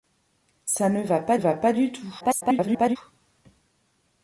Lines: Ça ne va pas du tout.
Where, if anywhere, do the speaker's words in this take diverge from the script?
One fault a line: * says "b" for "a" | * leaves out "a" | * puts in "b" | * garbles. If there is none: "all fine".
* puts in "va pas"
* garbles